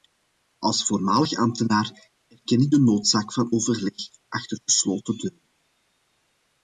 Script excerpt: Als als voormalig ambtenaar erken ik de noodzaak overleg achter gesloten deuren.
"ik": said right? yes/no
yes